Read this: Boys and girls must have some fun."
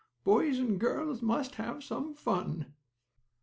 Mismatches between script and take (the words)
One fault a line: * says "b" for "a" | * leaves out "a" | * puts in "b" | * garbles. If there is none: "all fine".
all fine